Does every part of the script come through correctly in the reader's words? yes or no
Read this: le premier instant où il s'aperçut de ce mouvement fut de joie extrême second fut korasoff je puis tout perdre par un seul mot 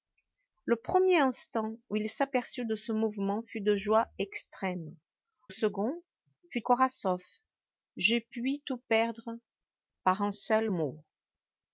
yes